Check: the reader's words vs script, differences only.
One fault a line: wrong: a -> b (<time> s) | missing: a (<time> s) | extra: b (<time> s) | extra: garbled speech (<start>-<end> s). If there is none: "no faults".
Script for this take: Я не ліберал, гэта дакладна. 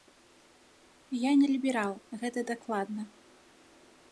no faults